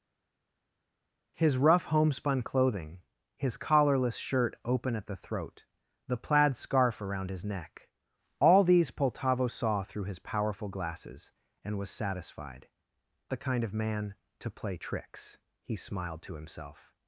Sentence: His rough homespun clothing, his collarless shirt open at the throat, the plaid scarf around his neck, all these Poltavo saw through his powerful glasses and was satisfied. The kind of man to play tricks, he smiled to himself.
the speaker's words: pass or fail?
pass